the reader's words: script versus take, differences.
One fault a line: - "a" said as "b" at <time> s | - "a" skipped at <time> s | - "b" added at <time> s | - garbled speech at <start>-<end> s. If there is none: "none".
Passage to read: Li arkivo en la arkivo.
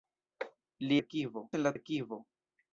none